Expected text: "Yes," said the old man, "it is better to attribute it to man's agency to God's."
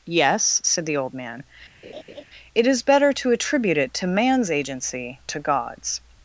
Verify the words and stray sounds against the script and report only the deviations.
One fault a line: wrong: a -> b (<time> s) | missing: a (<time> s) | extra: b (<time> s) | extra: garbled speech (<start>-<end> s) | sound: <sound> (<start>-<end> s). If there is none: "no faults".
sound: laugh (1.8-2.2 s)